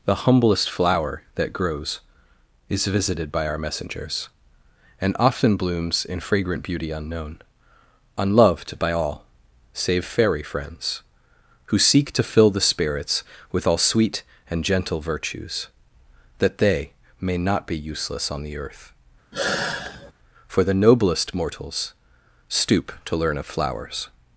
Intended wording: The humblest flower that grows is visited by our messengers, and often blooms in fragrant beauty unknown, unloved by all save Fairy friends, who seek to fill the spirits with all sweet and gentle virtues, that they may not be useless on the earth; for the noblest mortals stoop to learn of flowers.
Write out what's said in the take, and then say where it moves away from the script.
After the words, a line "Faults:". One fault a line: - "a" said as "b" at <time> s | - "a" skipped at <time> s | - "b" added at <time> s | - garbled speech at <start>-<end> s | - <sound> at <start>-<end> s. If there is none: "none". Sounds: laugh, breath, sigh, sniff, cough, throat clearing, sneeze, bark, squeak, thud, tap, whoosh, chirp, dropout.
The humblest flower that grows is visited by our messengers, and often blooms in fragrant beauty unknown, unloved by all save Fairy friends, who seek to fill the spirits with all sweet and gentle virtues, that they may not be useless on the earth; for the noblest mortals stoop to learn of flowers.
Faults:
- sigh at 19.3-20.1 s